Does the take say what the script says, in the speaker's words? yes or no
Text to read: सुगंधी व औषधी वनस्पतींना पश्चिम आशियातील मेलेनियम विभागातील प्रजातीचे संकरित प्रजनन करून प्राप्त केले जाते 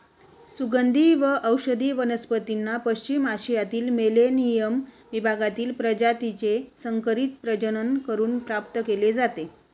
yes